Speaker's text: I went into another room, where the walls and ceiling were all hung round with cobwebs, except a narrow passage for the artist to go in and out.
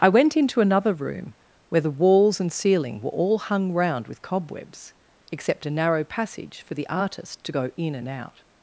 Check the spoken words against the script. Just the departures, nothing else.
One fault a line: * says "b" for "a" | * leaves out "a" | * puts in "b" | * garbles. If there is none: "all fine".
all fine